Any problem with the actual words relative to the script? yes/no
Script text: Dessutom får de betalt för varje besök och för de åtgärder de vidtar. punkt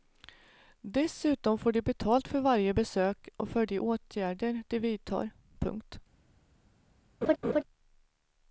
no